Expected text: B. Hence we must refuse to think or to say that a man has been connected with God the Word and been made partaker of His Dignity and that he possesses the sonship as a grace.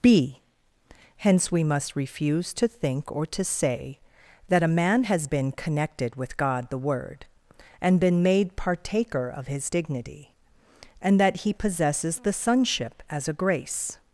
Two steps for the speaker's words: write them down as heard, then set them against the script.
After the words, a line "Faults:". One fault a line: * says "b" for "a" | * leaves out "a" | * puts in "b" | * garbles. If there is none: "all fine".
B. Hence we must refuse to think or to say that a man has been connected with God the Word and been made partaker of His Dignity and that he possesses the sonship as a grace.
Faults:
all fine